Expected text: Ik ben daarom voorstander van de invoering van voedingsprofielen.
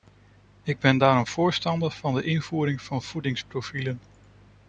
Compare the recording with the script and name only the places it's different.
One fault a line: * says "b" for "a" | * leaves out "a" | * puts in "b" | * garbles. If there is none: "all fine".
all fine